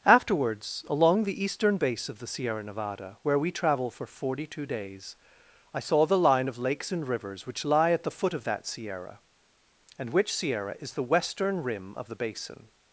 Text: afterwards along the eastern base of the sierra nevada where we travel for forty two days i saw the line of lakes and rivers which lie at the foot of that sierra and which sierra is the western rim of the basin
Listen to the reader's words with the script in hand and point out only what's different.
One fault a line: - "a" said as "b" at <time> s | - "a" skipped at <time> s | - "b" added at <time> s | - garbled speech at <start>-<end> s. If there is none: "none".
none